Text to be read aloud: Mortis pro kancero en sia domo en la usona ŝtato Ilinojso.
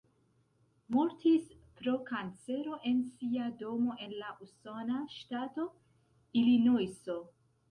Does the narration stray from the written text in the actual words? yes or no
no